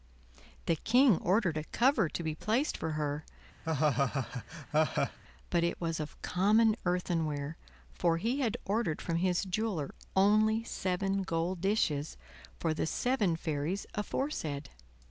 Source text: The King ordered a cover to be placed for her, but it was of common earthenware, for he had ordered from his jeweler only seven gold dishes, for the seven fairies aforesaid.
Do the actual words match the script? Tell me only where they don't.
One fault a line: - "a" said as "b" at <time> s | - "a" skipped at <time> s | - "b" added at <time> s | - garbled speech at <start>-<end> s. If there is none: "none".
none